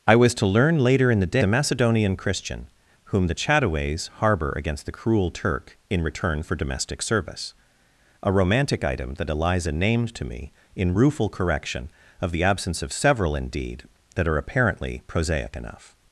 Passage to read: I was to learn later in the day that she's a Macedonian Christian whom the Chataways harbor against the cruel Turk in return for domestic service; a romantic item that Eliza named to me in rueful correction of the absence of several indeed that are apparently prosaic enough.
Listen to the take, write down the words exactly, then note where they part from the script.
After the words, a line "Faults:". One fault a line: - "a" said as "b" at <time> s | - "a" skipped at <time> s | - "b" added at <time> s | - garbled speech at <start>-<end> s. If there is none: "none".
I was to learn later in the a Macedonian Christian whom the Chataways harbor against the cruel Turk in return for domestic service; a romantic item that Eliza named to me in rueful correction of the absence of several indeed that are apparently prosaic enough.
Faults:
- "day that she's" skipped at 1.4 s